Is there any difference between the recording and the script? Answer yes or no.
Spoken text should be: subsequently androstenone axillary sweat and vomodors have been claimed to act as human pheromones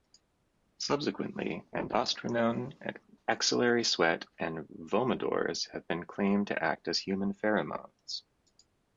no